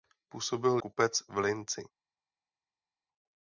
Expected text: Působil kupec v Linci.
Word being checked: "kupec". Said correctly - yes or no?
yes